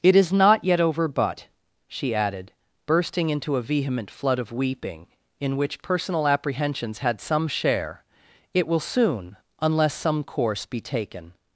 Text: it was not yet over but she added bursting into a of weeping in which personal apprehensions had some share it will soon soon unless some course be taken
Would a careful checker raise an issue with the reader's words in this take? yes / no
yes